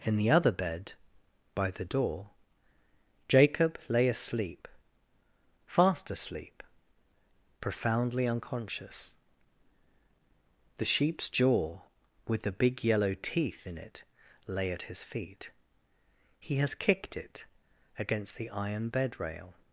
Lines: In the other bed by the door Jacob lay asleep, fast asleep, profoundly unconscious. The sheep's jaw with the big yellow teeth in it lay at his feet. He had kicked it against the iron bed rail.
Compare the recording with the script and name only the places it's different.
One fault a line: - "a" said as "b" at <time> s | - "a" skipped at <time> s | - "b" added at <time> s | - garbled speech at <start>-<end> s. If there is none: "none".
- "had" said as "has" at 16.6 s